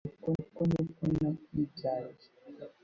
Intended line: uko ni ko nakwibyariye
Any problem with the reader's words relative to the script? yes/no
yes